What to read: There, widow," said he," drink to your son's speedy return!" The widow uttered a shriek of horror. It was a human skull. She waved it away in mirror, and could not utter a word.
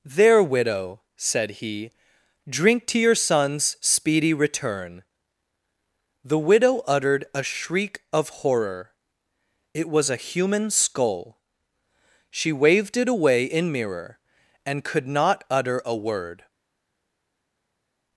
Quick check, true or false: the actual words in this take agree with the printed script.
true